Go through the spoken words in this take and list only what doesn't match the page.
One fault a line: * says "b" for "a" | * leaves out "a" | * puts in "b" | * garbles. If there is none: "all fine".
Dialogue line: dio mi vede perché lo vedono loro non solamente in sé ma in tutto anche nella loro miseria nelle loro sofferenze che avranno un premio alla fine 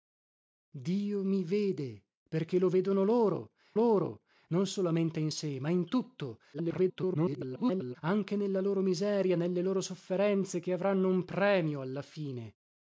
* puts in "loro"
* garbles